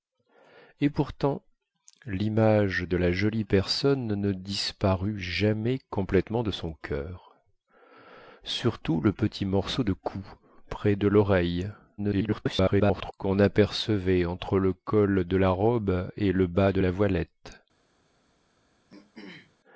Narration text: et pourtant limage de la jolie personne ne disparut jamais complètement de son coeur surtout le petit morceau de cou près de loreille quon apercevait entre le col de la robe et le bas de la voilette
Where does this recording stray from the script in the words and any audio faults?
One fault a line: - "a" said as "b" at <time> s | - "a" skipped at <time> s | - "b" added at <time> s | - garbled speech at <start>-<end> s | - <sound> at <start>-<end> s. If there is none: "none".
- garbled speech at 12.0-13.1 s
- throat clearing at 18.9-19.6 s